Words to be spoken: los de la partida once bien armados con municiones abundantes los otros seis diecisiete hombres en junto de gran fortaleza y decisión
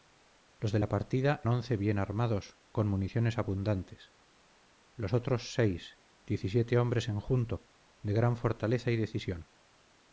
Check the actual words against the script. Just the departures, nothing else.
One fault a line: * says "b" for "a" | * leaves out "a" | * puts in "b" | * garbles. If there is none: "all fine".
all fine